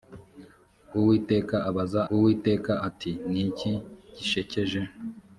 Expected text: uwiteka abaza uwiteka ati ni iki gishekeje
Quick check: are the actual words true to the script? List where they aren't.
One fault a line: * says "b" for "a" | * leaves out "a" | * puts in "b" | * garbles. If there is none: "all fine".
all fine